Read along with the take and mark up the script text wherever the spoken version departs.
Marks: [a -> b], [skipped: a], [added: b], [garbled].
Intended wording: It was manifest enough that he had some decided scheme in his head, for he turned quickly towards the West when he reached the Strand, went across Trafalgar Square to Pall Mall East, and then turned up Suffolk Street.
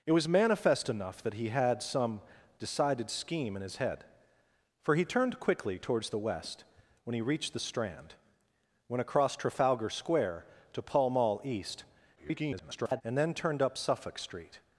It was manifest enough that he had some decided scheme in his head, for he turned quickly towards the West when he reached the Strand, went across Trafalgar Square to Pall Mall East, [garbled] and then turned up Suffolk Street.